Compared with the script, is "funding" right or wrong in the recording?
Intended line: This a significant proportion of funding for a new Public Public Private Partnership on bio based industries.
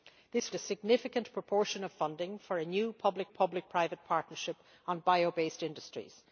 right